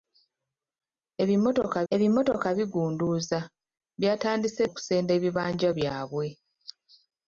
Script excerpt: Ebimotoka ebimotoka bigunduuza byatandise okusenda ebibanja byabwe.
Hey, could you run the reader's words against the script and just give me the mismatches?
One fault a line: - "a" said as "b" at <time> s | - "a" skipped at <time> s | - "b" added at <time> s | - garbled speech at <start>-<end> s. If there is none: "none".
none